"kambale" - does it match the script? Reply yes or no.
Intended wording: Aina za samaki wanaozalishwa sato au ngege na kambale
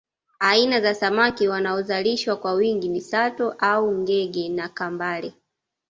yes